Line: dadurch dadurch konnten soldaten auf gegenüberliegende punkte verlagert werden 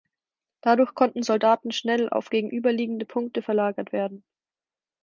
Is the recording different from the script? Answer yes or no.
yes